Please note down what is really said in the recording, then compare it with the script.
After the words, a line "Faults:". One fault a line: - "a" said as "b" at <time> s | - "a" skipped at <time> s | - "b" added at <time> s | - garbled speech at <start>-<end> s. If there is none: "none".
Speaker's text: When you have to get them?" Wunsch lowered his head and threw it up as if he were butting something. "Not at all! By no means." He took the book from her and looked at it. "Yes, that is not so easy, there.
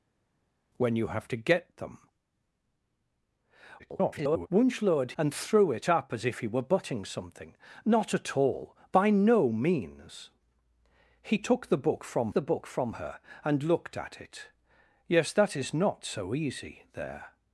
When you have to get them?" [garbled] Wunsch lowered and threw it up as if he were butting something. "Not at all! By no means." He took the book from the book from her and looked at it. "Yes, that is not so easy, there.
Faults:
- garbled speech at 3.8-4.5 s
- "his head" skipped at 5.1 s
- "the book from" added at 12.3 s